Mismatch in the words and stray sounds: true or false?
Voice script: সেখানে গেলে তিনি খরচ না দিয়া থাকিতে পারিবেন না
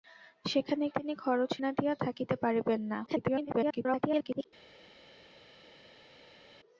true